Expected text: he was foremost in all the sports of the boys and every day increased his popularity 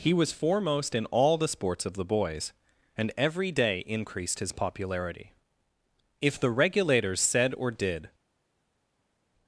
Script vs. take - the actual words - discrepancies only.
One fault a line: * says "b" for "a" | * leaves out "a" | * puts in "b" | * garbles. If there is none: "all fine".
* puts in "if the regulators said or did"